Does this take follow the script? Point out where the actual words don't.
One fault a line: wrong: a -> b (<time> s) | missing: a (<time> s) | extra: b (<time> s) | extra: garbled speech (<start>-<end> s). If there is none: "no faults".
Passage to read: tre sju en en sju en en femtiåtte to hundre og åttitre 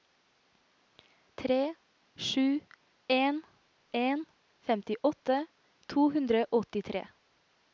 missing: sju en en (4.2 s)